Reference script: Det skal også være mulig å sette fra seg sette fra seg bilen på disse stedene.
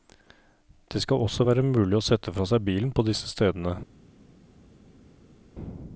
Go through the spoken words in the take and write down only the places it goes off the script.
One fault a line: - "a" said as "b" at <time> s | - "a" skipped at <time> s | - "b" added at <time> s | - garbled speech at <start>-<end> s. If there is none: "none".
- "sette fra seg" skipped at 2.6 s